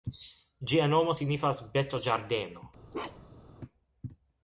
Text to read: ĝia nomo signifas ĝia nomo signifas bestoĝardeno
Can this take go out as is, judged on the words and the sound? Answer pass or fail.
fail